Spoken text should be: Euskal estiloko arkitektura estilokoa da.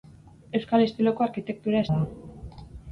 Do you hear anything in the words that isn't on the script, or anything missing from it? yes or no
yes